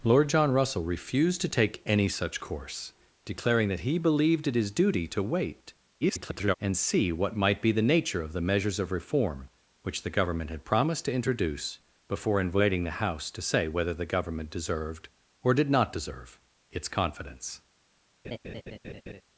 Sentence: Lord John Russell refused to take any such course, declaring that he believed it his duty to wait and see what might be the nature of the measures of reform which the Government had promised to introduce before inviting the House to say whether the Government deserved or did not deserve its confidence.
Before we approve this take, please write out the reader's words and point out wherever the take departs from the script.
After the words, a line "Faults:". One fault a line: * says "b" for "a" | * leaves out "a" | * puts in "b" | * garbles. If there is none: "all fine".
Lord John Russell refused to take any such course, declaring that he believed it his duty to wait [garbled] and see what might be the nature of the measures of reform which the Government had promised to introduce before inviting the House to say whether the Government deserved or did not deserve its confidence.
Faults:
* garbles